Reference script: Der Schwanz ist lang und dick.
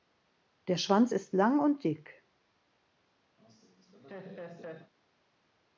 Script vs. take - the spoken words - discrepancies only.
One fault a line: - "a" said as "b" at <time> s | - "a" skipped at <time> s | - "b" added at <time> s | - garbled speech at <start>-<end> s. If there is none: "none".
none